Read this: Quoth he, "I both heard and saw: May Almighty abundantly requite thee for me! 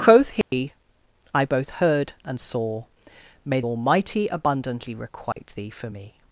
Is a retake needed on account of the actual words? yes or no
no